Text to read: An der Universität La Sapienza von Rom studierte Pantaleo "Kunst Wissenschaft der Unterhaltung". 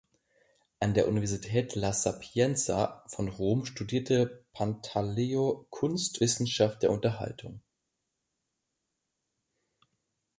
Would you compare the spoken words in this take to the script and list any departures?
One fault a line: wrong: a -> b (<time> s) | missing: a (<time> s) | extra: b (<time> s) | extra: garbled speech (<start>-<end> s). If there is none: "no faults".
no faults